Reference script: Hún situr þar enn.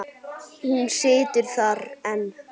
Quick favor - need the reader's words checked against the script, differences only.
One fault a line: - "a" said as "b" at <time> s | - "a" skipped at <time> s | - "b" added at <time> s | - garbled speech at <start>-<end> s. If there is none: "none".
none